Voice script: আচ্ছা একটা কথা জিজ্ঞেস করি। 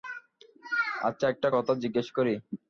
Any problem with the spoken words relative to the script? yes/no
no